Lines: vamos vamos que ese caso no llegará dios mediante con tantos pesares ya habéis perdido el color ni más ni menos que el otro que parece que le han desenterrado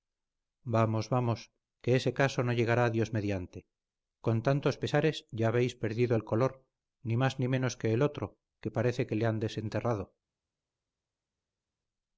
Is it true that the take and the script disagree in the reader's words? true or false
false